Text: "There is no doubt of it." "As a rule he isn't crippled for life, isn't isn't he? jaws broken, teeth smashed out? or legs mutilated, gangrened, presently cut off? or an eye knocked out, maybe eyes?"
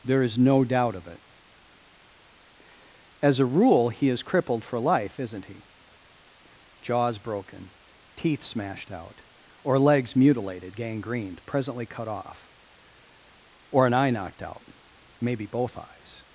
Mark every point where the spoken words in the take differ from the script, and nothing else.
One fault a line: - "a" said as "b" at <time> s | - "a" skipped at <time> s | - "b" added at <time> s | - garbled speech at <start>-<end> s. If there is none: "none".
- "isn't" said as "is" at 4.1 s
- "isn't" skipped at 5.5 s
- "both" added at 15.5 s